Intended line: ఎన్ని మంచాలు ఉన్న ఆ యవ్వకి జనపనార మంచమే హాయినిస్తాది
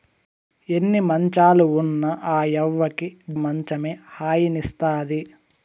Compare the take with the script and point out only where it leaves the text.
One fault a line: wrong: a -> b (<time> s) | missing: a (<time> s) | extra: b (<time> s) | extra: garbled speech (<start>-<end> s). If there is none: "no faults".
missing: జనపనార (3.1 s)